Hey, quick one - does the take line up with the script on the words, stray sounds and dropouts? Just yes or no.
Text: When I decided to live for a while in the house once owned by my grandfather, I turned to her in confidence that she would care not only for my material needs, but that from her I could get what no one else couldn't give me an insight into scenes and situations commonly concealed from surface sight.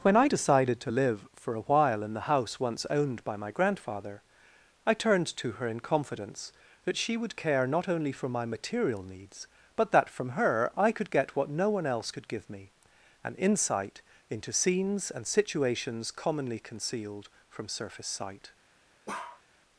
no